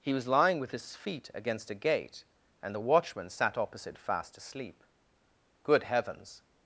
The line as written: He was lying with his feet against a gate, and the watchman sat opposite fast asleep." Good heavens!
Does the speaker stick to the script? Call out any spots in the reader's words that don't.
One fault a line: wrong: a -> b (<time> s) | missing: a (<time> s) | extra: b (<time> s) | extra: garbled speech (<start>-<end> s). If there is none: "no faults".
no faults